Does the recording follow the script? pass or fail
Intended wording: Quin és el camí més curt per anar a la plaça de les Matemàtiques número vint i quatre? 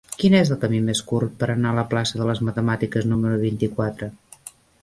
pass